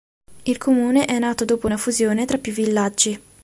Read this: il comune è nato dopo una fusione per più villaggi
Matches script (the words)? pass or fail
fail